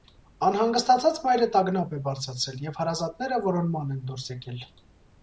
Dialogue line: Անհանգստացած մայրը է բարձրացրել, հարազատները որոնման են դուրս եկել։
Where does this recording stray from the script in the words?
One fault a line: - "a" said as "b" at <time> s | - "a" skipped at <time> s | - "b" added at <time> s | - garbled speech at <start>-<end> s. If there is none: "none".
- "տագնապ" added at 1.6 s
- "և" added at 2.7 s